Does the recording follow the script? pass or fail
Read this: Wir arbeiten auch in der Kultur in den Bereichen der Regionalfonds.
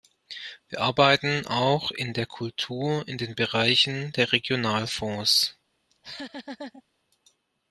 pass